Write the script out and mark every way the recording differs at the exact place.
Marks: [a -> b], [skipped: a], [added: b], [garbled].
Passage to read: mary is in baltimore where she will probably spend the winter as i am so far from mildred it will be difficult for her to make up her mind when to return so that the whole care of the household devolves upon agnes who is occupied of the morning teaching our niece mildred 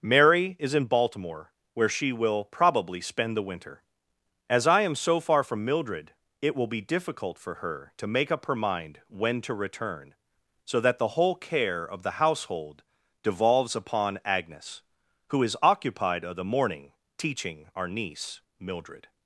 mary is in baltimore where she will probably spend the winter as i am so far from mildred it will be difficult for her to make up her mind when to return so that the whole care of the household devolves upon agnes who is occupied of the morning teaching our niece mildred